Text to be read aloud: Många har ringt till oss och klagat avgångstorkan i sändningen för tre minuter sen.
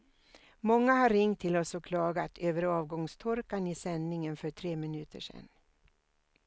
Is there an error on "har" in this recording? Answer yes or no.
no